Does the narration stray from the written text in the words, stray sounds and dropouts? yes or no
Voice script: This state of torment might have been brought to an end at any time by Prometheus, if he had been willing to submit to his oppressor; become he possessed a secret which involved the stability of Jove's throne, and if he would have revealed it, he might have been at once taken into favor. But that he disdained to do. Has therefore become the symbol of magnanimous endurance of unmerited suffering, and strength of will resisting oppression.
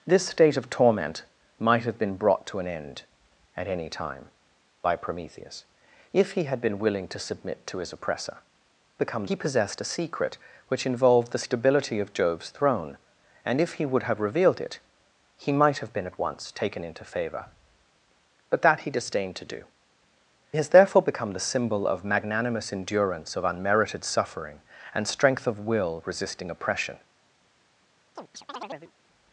yes